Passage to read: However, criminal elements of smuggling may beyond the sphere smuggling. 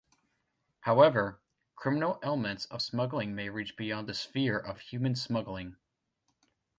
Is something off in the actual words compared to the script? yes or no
yes